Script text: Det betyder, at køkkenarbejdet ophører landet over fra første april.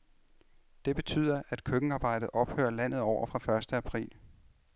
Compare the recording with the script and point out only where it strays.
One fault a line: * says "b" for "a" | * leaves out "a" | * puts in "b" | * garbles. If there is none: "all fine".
all fine